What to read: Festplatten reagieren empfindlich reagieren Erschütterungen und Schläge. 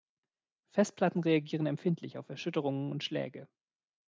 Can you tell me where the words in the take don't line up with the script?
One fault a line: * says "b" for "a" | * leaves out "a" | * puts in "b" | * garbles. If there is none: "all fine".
* says "auf" for "reagieren"